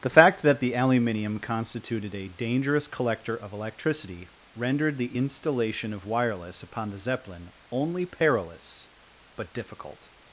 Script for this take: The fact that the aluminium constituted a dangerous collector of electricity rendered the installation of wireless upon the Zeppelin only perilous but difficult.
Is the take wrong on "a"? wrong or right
right